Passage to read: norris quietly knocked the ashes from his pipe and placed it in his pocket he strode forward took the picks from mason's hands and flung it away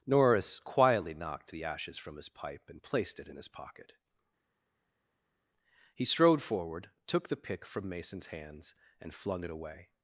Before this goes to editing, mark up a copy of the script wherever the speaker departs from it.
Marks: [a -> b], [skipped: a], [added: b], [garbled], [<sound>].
norris quietly knocked the ashes from his pipe and placed it in his pocket he strode forward took the [picks -> pick] from mason's hands and flung it away